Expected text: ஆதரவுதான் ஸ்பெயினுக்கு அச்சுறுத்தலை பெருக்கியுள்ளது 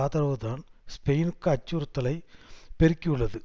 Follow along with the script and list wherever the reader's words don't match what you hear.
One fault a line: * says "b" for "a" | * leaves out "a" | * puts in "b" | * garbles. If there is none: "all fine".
all fine